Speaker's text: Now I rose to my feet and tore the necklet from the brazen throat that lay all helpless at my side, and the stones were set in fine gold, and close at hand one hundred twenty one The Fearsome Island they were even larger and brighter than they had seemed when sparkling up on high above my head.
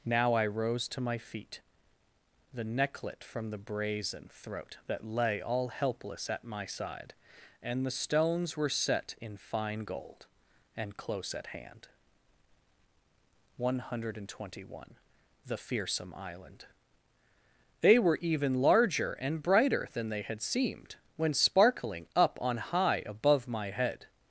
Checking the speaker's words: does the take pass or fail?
fail